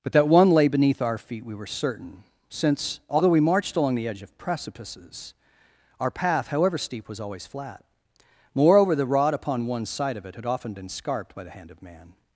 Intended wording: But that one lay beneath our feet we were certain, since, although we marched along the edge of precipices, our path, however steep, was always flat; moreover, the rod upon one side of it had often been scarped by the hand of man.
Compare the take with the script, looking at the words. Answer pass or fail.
pass